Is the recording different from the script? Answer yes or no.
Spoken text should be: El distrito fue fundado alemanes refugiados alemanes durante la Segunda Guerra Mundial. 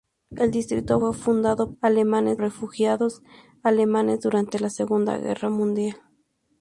no